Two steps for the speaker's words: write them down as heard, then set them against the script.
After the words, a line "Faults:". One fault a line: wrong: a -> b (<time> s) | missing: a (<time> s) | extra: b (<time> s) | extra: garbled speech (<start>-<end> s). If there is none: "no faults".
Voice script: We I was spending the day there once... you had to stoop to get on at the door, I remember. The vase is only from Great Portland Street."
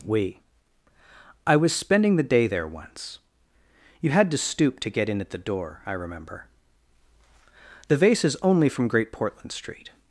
We I was spending the day there once... you had to stoop to get in at the door, I remember. The vase is only from Great Portland Street."
Faults:
wrong: on -> in (5.1 s)